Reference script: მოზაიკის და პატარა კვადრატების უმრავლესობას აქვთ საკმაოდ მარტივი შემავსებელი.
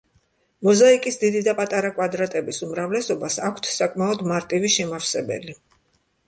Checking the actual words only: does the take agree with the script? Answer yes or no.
no